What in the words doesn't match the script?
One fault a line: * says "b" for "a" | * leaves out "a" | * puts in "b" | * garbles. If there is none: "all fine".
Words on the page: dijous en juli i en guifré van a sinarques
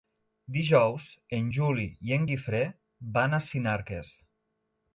all fine